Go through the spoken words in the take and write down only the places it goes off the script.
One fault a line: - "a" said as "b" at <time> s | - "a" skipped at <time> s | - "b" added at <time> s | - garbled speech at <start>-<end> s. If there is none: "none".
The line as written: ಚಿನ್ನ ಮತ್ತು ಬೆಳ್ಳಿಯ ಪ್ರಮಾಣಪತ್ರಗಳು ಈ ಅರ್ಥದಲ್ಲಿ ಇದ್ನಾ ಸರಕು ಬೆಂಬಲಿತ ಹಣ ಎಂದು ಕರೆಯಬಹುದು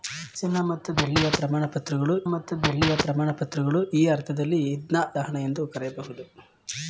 - "ಮತ್ತು ಬೆಳ್ಳಿಯ ಪ್ರಮಾಣಪತ್ರಗಳು" added at 2.2 s
- "ಸರಕು ಬೆಂಬಲಿತ" skipped at 5.0 s